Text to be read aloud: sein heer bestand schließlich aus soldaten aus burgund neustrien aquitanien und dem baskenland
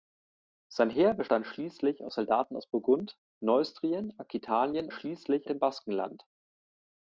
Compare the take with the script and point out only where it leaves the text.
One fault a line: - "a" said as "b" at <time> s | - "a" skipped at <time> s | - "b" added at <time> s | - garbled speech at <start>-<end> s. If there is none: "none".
- "und" said as "schließlich" at 4.9 s